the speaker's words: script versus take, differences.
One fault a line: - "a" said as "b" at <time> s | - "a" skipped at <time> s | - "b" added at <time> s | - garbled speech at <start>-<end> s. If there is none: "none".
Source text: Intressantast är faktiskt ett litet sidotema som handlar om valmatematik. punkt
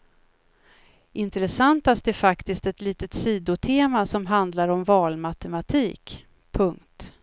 none